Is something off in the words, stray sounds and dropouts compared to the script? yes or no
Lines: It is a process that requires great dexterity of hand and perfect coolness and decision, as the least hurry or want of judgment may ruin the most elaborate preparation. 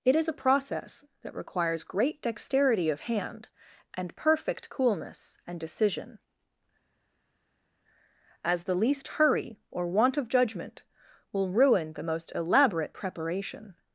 yes